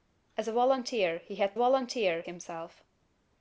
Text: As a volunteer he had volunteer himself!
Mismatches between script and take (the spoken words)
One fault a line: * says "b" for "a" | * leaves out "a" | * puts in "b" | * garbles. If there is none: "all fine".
all fine